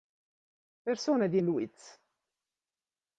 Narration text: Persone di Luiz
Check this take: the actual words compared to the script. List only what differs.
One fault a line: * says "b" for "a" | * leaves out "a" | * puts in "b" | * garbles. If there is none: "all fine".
all fine